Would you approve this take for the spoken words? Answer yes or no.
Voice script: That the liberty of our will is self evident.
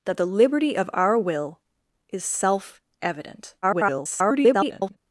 no